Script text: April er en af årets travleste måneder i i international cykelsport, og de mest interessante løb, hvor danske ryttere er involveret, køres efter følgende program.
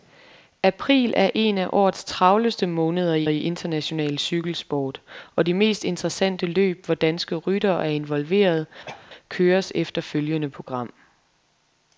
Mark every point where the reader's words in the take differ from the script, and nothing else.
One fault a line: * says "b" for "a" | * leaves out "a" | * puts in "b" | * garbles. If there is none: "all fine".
all fine